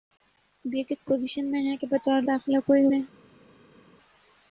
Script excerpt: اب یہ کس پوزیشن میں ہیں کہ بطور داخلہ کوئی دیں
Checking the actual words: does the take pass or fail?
pass